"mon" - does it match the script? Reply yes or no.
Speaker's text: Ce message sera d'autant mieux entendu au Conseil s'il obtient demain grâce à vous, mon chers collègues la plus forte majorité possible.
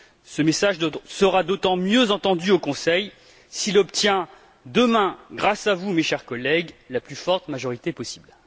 no